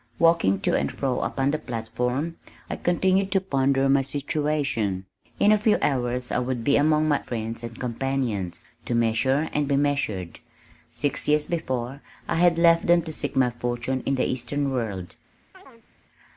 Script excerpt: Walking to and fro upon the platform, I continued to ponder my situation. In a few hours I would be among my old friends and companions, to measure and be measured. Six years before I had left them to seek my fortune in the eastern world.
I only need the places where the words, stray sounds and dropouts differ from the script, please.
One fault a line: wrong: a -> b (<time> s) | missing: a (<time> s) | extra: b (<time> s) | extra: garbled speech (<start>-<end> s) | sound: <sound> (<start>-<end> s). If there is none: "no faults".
missing: old (7.2 s)
sound: chirp (15.5-15.9 s)